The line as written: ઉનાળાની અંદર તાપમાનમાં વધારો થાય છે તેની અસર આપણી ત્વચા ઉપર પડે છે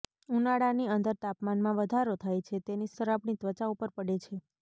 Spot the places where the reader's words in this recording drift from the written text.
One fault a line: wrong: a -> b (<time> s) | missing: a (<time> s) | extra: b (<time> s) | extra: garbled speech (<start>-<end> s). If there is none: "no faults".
no faults